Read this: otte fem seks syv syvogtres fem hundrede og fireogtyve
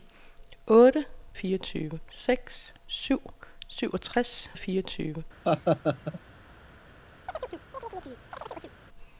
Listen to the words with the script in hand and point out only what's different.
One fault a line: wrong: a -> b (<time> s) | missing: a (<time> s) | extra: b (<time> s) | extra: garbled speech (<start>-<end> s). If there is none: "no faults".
wrong: fem -> fireogtyve (1.3 s)
missing: fem hundrede (4.5 s)